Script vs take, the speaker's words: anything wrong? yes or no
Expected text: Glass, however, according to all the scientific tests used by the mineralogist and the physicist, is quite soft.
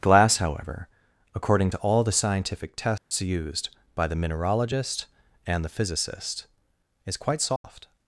no